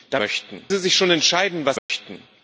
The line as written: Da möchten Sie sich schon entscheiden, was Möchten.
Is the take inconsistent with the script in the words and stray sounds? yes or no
yes